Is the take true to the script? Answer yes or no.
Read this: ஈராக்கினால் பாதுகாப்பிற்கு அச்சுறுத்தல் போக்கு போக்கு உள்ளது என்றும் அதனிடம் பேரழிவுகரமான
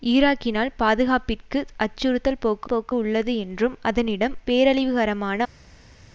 yes